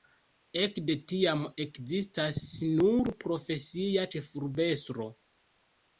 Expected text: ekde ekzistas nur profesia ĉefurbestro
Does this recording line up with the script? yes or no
no